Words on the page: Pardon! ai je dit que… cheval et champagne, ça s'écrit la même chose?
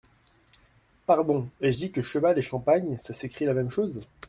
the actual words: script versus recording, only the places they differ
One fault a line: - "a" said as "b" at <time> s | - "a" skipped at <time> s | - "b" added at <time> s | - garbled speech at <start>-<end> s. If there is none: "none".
none